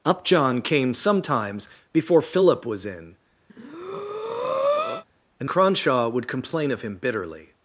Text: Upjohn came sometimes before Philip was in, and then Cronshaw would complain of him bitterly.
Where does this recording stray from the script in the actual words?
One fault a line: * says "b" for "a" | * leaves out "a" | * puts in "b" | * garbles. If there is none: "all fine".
* leaves out "then"